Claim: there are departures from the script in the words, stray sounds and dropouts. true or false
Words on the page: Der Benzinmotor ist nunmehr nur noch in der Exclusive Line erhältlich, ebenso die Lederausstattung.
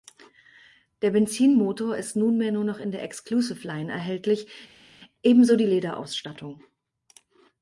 false